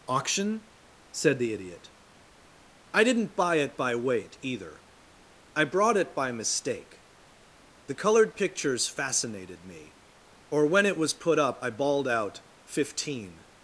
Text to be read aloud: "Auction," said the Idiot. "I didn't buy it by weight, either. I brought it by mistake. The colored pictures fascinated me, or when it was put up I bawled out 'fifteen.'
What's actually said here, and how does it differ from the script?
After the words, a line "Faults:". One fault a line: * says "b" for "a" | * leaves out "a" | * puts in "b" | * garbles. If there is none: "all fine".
"Auction," said the Idiot. "I didn't buy it by weight, either. I brought it by mistake. The colored pictures fascinated me, or when it was put up I bawled out 'fifteen.'
Faults:
all fine